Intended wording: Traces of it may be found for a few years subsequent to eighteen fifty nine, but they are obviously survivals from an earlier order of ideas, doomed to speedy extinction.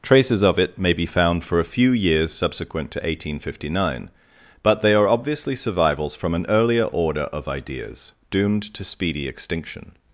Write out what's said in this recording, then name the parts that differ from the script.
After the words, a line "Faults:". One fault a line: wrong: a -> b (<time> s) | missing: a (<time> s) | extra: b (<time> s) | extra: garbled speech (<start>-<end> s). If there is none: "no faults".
Traces of it may be found for a few years subsequent to eighteen fifty nine, but they are obviously survivals from an earlier order of ideas, doomed to speedy extinction.
Faults:
no faults